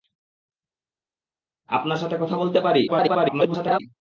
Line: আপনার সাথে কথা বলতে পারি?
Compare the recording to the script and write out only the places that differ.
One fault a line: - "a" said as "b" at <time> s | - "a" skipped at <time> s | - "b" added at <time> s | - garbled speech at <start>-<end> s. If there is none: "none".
- garbled speech at 2.9-3.8 s